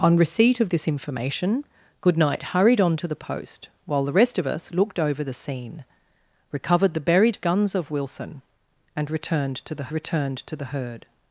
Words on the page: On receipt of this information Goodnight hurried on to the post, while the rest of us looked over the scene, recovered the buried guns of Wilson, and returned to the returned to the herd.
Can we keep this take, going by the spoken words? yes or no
yes